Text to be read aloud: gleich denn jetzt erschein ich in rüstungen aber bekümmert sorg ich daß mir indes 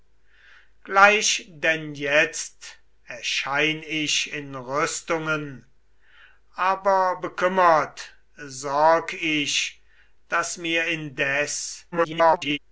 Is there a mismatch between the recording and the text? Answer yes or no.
yes